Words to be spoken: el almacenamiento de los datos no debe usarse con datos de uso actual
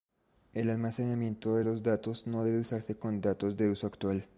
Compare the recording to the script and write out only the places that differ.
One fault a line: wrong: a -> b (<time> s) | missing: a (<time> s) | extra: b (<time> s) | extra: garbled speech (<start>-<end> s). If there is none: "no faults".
no faults